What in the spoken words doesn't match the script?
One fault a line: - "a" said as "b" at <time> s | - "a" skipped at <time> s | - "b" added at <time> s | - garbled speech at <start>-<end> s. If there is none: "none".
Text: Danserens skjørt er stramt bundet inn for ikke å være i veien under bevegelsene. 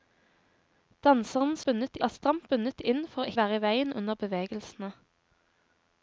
- "skjørt" said as "bundet" at 1.7 s
- "ikke" skipped at 3.3 s